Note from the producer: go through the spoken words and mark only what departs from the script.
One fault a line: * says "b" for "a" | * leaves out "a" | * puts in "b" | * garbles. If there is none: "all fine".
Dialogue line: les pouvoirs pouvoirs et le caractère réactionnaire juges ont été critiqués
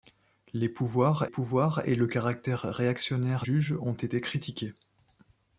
all fine